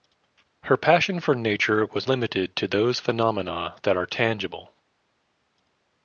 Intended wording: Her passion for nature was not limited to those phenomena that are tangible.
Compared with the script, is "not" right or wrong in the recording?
wrong